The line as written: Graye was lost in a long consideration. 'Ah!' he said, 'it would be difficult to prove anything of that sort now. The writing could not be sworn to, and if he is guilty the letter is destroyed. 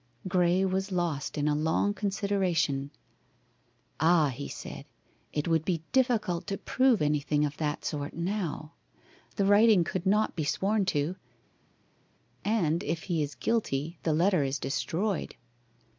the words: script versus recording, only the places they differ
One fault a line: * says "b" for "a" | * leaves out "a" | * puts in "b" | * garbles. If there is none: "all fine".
all fine